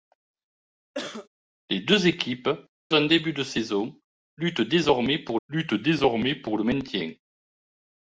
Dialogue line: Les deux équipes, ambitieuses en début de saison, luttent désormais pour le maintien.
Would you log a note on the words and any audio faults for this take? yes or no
yes